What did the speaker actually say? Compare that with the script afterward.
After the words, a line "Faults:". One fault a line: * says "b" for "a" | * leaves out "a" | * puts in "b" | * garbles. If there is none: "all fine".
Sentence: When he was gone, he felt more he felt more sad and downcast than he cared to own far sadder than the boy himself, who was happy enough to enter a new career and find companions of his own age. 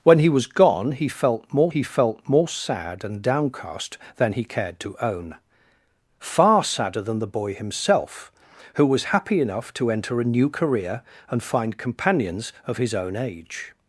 When he was gone, he felt more he felt more sad and downcast than he cared to own far sadder than the boy himself, who was happy enough to enter a new career and find companions of his own age.
Faults:
all fine